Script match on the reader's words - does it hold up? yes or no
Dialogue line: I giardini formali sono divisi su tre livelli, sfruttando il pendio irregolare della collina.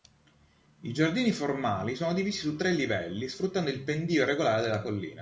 yes